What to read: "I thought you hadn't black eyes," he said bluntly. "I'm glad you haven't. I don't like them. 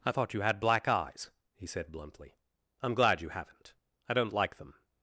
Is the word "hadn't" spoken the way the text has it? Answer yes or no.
no